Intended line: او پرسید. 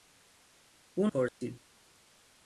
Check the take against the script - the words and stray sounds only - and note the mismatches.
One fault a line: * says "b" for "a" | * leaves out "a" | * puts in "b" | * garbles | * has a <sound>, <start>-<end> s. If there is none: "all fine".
* has a dropout, 1.3-1.4 s